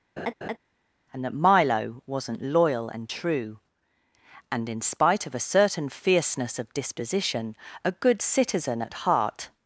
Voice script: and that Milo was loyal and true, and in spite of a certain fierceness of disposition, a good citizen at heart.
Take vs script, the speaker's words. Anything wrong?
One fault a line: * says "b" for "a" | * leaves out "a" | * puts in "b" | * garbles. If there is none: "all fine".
* says "wasn't" for "was"